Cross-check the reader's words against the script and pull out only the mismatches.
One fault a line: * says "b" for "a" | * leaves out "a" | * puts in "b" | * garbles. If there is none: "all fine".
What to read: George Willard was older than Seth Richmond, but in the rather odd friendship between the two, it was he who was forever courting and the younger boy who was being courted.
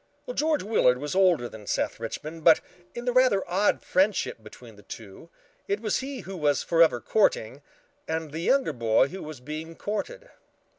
all fine